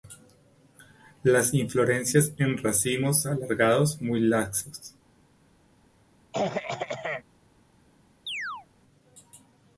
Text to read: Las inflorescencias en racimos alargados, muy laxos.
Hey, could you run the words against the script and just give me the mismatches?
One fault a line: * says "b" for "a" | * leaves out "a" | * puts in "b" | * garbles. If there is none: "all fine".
all fine